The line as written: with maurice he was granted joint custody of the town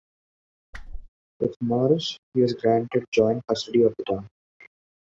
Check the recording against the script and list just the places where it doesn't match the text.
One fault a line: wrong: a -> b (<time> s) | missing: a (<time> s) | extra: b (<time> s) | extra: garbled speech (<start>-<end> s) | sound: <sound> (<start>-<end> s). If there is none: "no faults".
sound: whoosh (0.7-1.1 s)